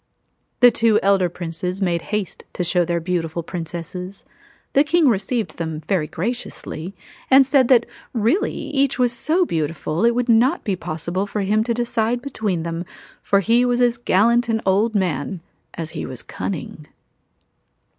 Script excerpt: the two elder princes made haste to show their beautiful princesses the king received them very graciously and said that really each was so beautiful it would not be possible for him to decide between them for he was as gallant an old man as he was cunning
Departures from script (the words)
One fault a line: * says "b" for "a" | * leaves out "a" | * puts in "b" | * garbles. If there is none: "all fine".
all fine